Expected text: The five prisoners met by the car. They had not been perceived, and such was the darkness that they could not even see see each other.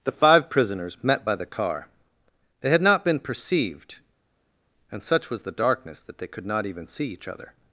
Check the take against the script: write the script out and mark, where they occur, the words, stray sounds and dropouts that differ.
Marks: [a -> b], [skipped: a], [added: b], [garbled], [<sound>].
The five prisoners met by the car. They had not been perceived, and such was the darkness that they could not even see [skipped: see] each other.